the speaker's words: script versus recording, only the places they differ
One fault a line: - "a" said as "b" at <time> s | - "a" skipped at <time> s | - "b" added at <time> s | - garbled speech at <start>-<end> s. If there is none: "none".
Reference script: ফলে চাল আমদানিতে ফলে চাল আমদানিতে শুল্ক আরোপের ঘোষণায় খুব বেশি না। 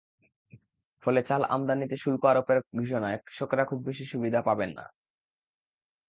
- "ফলে চাল আমদানিতে" skipped at 1.9 s
- "কৃষকেরা" added at 3.3 s
- "সুবিধা পাবেন" added at 4.1 s